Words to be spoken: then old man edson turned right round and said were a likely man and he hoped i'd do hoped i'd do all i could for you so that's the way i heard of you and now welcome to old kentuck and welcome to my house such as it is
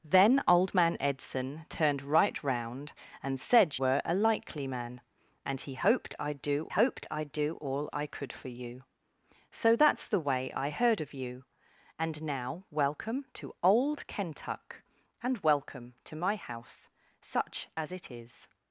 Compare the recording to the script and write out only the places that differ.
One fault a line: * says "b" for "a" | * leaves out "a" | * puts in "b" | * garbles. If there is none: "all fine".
all fine